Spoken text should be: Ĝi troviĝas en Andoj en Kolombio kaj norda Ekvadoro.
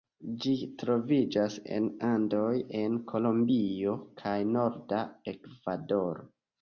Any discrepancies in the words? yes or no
no